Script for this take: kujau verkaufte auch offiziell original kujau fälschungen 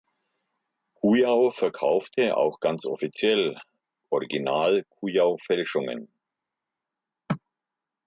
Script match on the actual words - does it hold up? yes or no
no